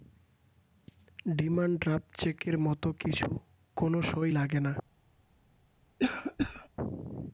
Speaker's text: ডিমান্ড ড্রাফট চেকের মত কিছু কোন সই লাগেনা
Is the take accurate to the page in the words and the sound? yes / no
no